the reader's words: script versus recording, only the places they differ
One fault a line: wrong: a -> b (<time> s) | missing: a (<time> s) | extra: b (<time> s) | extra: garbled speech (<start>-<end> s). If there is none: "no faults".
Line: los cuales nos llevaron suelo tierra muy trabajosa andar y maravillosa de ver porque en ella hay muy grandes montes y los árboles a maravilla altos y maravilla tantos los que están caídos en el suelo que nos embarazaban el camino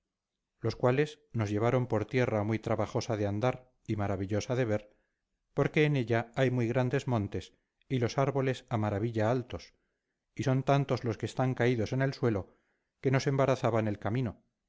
wrong: suelo -> por (1.9 s)
extra: de (3.2 s)
wrong: maravilla -> son (10.4 s)